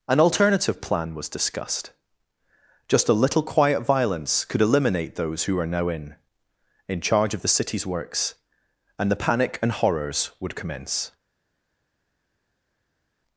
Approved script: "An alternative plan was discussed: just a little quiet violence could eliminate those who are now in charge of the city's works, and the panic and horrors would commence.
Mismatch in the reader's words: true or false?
true